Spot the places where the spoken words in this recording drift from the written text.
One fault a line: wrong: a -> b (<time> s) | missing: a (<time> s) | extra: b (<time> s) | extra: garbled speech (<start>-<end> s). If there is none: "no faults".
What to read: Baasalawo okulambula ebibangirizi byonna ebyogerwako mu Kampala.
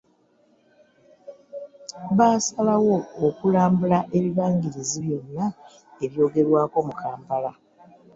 no faults